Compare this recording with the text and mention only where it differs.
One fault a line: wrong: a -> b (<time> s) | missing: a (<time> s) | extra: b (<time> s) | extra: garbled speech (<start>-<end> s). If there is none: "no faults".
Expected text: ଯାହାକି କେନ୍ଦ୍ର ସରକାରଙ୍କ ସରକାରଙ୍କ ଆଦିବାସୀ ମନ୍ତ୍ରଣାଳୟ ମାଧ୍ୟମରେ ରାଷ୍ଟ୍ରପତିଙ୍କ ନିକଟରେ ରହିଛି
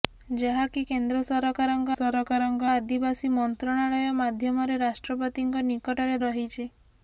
no faults